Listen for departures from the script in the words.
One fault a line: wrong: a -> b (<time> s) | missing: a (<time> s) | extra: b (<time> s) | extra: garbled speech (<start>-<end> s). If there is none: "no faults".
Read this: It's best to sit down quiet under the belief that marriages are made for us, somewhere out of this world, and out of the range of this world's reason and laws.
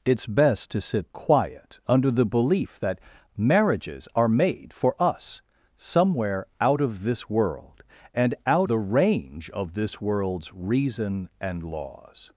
missing: down (1.1 s)
missing: of (8.7 s)